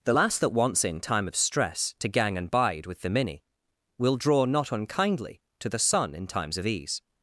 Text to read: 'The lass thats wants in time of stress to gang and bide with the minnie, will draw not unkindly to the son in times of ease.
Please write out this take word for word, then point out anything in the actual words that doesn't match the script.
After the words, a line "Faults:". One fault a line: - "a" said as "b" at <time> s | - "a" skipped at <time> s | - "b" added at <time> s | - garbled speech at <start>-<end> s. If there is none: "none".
'The lass that wants in time of stress to gang and bide with the minnie, will draw not unkindly to the son in times of ease.
Faults:
- "thats" said as "that" at 0.4 s